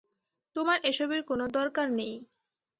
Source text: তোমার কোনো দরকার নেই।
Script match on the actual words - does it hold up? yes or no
no